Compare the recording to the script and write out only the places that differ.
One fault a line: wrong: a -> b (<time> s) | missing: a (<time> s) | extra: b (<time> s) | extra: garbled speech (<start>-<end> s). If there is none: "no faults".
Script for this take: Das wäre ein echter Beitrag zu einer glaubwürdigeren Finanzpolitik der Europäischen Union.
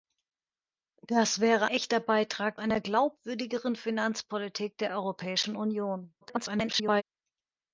missing: ein (1.6 s)
missing: zu (2.6 s)
extra: garbled speech (6.2-7.0 s)